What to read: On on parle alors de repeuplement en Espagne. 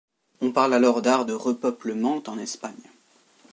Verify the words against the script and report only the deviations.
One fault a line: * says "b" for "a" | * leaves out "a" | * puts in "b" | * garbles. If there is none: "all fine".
* leaves out "on"
* puts in "d'art"